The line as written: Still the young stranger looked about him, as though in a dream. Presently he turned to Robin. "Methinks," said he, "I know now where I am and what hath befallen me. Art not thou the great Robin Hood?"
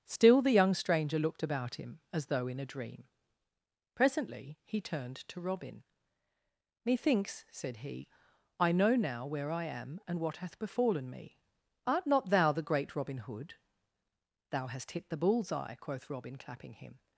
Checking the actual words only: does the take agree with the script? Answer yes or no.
no